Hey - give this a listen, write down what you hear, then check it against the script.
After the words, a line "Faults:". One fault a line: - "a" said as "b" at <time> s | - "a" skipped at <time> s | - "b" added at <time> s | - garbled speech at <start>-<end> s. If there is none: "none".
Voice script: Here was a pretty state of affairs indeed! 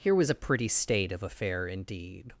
Here was a pretty state of affair indeed!
Faults:
- "affairs" said as "affair" at 1.2 s